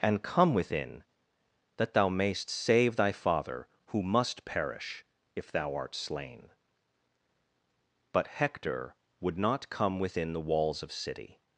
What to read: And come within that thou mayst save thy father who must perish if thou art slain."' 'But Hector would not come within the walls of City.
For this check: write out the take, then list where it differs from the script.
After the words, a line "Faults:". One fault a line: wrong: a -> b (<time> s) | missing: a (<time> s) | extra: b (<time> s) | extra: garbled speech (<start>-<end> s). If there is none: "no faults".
And come within that thou mayst save thy father who must perish if thou art slain."' 'But Hector would not come within the walls of City.
Faults:
no faults